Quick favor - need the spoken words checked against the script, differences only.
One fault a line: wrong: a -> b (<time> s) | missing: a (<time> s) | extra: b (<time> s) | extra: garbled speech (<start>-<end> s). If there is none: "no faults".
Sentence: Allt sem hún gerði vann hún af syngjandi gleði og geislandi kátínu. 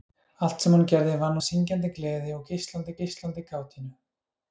missing: hún (1.4 s)
extra: geislandi (3.0 s)